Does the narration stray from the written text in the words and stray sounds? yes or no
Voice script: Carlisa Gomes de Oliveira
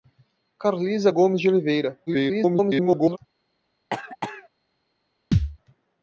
yes